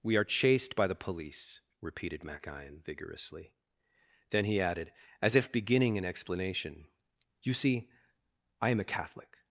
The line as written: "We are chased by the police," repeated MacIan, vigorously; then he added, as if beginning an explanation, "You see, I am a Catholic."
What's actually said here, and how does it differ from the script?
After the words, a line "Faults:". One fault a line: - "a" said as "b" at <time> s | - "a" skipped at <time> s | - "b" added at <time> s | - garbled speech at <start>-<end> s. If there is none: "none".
"We are chased by the police," repeated MacIan, vigorously; then he added, as if beginning an explanation, "You see, I am a Catholic."
Faults:
none